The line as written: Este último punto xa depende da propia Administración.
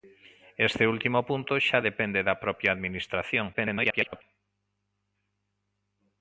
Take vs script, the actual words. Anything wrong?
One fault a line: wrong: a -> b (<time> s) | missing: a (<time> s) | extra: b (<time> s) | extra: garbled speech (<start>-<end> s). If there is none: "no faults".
extra: garbled speech (3.5-4.2 s)